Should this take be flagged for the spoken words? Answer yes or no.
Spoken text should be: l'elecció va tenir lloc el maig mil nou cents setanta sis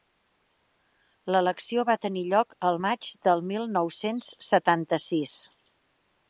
yes